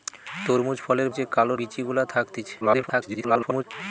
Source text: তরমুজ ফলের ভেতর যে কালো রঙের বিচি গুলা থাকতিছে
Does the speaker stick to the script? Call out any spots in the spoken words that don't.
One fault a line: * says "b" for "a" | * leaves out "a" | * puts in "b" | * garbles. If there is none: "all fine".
* leaves out "ভেতর"
* leaves out "রঙের"
* garbles